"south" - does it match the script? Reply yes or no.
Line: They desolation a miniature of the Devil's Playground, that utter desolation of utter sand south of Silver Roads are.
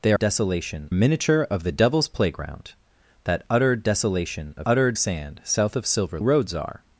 yes